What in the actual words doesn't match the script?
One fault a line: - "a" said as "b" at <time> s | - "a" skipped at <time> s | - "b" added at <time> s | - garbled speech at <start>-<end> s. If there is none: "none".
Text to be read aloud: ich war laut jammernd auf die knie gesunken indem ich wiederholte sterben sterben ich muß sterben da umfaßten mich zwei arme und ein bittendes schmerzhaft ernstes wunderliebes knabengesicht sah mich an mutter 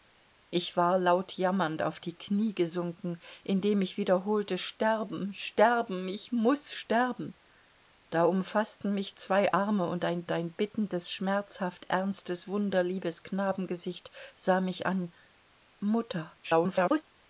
- "ein" added at 10.3 s
- garbled speech at 16.4-17.0 s